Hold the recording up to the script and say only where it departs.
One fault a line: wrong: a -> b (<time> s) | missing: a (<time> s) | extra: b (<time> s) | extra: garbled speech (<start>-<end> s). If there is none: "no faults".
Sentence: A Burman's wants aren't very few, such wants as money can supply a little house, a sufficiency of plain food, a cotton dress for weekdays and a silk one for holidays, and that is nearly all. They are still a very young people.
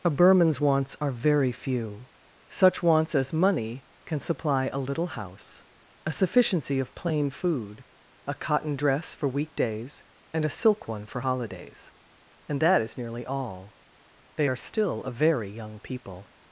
wrong: aren't -> are (1.0 s)